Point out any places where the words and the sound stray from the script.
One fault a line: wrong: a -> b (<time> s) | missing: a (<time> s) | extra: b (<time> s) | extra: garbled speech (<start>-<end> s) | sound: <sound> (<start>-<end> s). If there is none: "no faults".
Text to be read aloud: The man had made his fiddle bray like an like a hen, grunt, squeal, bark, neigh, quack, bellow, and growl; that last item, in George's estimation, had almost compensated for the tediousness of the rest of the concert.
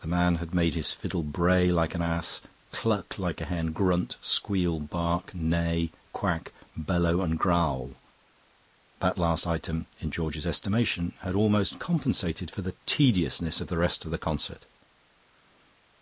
extra: ass cluck (2.0 s)